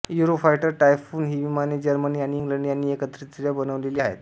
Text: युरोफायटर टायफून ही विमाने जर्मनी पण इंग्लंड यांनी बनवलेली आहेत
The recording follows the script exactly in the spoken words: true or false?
false